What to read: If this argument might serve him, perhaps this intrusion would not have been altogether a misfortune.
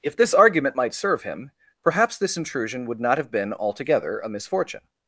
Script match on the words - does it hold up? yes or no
yes